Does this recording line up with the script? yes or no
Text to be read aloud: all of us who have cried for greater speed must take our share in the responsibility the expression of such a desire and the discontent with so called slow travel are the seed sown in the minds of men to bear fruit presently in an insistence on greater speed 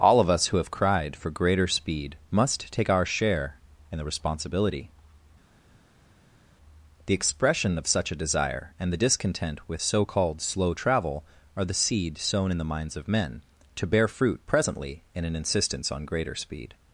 yes